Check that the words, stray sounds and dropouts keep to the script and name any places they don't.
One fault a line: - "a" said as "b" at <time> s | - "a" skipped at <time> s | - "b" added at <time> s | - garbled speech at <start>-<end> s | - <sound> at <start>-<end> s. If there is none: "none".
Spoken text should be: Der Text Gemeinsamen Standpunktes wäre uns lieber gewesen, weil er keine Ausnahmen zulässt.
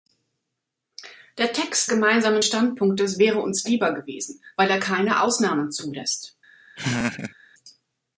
- laugh at 6.8-7.3 s